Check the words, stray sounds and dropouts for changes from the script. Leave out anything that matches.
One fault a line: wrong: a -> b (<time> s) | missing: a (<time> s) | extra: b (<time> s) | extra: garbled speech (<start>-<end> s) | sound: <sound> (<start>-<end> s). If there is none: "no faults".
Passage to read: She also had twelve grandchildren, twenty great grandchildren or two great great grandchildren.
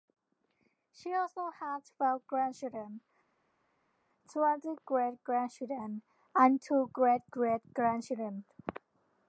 wrong: or -> and (6.3 s)